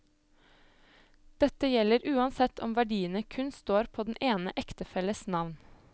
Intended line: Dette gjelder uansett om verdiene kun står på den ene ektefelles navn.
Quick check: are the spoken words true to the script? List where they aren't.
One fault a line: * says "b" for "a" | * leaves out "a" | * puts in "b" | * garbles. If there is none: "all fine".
all fine